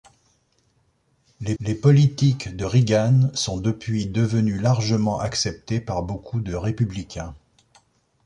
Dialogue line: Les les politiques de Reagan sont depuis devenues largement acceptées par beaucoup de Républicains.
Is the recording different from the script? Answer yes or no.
no